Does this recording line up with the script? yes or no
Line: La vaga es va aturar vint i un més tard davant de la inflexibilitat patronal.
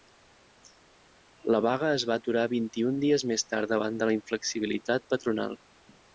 no